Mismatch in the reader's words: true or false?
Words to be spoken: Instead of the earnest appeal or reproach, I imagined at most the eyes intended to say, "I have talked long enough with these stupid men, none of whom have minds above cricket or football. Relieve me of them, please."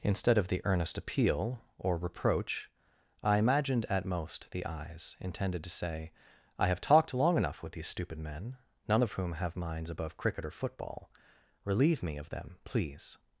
false